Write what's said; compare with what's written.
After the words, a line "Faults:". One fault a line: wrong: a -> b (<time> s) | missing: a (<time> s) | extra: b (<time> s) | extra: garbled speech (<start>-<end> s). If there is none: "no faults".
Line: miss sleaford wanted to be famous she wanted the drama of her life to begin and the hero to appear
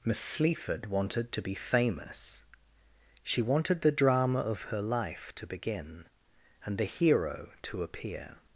miss sleaford wanted to be famous she wanted the drama of her life to begin and the hero to appear
Faults:
no faults